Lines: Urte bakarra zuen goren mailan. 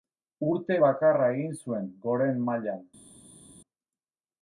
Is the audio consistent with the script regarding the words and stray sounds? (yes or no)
no